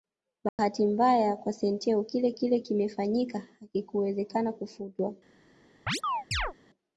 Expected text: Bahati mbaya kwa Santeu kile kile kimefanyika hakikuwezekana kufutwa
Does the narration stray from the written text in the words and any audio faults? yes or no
yes